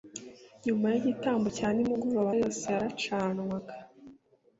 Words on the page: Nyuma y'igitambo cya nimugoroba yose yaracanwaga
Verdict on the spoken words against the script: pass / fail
pass